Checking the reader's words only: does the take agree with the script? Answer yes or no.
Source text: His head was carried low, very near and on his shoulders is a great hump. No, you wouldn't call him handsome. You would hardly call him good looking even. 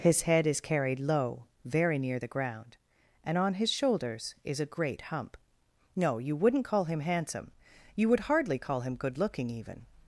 no